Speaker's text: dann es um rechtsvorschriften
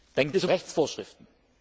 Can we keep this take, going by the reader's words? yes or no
yes